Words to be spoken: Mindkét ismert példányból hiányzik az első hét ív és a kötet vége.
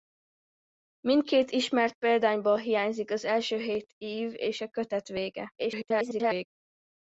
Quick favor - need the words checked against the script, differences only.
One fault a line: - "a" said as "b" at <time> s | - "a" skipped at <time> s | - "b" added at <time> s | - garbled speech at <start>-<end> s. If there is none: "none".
- garbled speech at 5.6-6.5 s